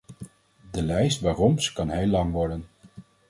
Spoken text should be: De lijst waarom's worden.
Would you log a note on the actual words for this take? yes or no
yes